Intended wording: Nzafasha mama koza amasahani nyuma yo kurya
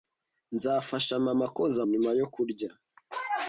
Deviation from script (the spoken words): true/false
true